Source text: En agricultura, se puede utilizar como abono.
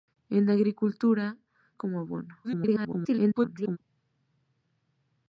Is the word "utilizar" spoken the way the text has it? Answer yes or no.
no